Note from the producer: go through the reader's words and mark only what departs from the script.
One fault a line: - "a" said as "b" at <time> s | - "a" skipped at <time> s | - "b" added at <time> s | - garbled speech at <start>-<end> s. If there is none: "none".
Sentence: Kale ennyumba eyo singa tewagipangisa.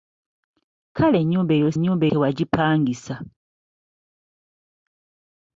- "singa" said as "ennyumba" at 1.8 s